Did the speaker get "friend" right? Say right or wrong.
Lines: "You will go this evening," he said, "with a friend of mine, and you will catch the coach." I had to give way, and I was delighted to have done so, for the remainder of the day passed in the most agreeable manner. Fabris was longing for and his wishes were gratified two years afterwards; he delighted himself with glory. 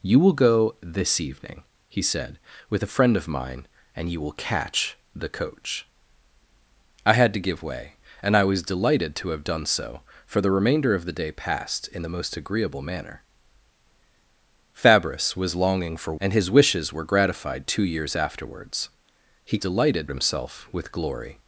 right